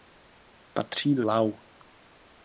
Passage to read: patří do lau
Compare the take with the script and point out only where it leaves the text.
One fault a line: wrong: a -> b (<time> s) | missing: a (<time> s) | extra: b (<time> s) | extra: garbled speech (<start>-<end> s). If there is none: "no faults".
no faults